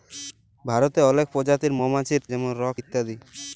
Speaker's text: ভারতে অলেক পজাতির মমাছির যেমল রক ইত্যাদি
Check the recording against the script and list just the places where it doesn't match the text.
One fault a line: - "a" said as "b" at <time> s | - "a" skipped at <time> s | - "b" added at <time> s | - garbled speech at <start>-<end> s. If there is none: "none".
none